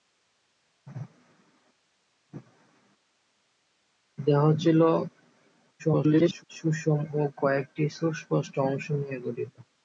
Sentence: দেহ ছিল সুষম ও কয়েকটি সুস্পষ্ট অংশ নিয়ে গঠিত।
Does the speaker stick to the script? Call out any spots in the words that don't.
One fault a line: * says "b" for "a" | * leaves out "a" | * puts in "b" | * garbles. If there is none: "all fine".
* garbles